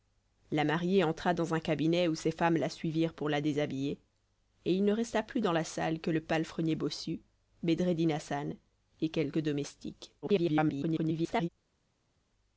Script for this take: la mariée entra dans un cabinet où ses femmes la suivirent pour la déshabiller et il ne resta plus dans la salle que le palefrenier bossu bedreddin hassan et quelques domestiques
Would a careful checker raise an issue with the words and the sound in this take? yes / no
yes